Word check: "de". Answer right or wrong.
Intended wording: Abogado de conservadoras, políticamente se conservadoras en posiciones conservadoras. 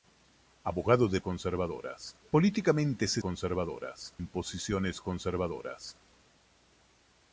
right